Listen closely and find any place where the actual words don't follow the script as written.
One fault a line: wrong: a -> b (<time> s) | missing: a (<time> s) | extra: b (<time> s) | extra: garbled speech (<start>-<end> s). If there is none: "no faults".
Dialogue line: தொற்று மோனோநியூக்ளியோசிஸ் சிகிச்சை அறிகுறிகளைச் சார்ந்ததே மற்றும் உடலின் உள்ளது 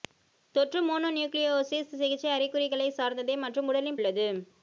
no faults